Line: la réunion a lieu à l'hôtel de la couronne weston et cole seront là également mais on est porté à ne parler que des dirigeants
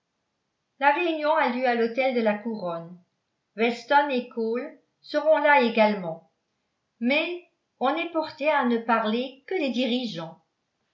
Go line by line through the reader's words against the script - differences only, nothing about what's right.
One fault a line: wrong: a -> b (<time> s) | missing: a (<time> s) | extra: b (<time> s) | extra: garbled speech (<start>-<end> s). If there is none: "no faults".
no faults